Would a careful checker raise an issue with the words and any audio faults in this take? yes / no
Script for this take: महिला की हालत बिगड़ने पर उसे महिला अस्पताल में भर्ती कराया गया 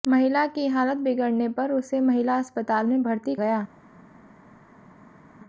yes